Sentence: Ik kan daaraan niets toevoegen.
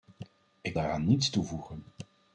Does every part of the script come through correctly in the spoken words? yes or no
no